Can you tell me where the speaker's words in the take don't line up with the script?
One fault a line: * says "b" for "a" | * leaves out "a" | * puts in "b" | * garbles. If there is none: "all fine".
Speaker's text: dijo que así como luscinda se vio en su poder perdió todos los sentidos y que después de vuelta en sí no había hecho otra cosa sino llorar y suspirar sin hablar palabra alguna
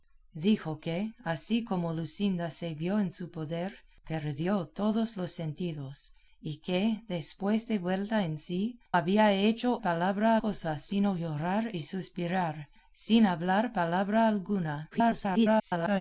* leaves out "no"
* says "palabra" for "otra"
* garbles